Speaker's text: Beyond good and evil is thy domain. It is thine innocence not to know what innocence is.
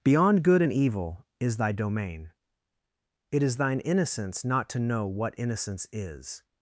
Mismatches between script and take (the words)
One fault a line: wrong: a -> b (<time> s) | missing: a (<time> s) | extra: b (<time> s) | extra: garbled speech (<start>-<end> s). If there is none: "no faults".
no faults